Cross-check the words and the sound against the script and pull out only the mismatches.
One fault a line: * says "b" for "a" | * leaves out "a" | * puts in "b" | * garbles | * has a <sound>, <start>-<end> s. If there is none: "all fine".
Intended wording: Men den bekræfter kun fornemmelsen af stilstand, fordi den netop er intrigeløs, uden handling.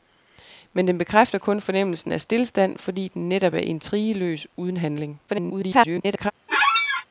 * garbles
* has a squeak, 6.5-7.1 s